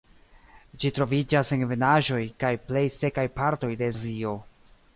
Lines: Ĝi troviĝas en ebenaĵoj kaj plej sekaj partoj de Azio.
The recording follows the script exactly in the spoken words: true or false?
true